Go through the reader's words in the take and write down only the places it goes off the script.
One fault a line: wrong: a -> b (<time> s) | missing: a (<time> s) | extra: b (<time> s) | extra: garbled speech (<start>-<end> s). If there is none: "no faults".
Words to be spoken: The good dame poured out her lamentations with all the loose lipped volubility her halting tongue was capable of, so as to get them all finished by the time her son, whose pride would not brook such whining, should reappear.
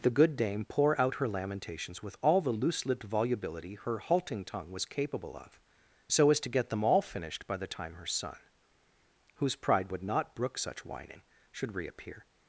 wrong: poured -> pour (0.6 s)